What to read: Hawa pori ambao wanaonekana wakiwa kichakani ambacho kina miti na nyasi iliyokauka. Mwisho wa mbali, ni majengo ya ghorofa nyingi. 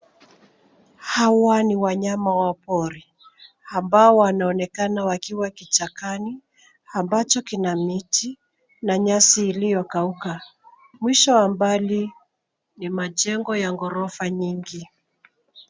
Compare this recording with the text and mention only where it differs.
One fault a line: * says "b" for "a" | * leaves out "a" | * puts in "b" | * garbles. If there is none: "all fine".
* puts in "ni wanyama wa"